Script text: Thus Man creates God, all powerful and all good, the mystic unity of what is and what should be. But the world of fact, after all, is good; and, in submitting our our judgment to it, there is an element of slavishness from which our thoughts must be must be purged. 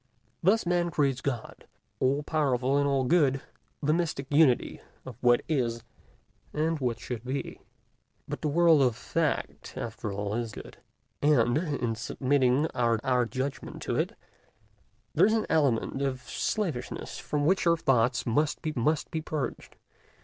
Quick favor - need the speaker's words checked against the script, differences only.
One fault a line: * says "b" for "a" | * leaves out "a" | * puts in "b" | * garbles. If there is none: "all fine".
all fine